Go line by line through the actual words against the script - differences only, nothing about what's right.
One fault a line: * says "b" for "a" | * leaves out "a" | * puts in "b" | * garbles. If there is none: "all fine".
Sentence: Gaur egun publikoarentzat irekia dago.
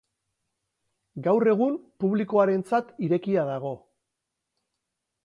all fine